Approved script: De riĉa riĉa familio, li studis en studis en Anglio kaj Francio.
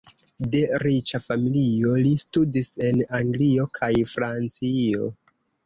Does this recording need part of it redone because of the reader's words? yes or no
yes